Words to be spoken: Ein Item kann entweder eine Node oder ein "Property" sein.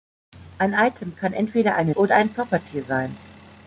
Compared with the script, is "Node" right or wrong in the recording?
wrong